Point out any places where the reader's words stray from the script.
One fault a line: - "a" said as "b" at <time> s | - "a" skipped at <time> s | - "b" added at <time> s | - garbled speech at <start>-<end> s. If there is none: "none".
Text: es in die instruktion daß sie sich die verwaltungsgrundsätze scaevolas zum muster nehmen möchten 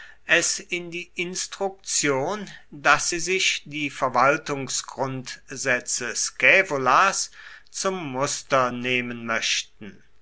none